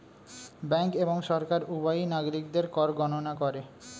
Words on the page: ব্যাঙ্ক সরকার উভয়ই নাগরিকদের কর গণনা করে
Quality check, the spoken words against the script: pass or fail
fail